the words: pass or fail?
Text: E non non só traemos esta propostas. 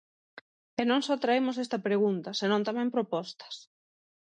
fail